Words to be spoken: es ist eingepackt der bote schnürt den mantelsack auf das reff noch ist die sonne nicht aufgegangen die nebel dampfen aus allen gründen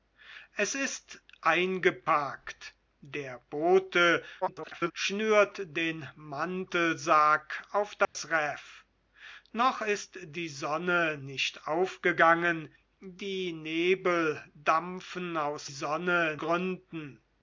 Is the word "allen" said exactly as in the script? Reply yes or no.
no